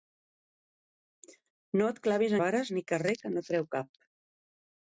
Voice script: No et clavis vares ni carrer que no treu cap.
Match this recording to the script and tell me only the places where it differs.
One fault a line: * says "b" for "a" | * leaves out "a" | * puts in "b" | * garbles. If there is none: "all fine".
all fine